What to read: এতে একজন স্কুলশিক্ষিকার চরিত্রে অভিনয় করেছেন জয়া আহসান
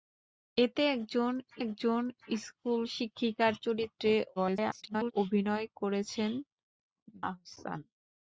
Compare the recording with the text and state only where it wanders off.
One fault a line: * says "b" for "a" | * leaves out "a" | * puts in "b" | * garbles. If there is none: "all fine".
* puts in "একজন"
* garbles
* leaves out "জয়া"